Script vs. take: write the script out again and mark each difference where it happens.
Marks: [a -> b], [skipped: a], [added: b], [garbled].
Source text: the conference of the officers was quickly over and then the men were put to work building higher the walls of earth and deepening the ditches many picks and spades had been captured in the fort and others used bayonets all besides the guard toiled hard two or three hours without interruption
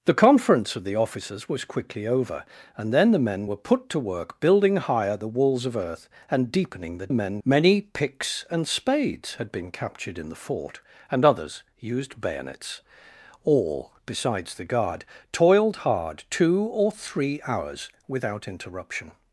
the conference of the officers was quickly over and then the men were put to work building higher the walls of earth and deepening the [ditches -> men] many picks and spades had been captured in the fort and others used bayonets all besides the guard toiled hard two or three hours without interruption